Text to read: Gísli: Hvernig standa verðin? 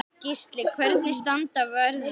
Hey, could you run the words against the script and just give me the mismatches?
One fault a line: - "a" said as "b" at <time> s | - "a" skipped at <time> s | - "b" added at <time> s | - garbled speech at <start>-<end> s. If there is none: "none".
none